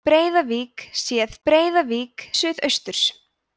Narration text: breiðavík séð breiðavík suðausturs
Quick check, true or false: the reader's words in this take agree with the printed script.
true